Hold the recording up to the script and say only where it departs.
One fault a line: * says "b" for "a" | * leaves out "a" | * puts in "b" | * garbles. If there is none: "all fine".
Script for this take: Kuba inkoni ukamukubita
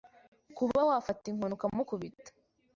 * puts in "wafata"